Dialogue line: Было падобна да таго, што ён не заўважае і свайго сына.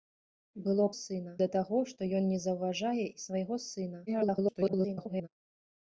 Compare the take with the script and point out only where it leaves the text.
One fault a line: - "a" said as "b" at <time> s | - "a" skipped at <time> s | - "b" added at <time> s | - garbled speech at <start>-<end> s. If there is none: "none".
- "падобна" said as "сына" at 1.0 s
- garbled speech at 4.1-5.3 s